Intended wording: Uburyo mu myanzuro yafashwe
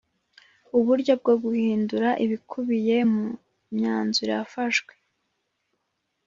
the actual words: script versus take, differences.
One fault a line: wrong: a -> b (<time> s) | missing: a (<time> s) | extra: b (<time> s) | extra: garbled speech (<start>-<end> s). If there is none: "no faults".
extra: bwo guhindura ibikubiye (1.2 s)